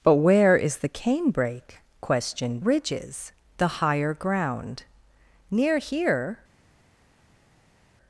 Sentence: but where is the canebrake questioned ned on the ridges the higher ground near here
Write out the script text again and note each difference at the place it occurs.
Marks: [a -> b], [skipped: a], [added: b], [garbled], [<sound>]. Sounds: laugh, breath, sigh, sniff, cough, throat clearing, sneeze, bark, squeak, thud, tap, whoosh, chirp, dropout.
but where is the canebrake questioned [skipped: ned on the] ridges the higher ground near here